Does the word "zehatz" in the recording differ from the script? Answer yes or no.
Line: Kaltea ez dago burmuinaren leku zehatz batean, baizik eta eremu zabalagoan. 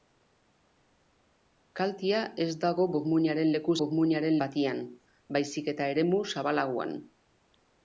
yes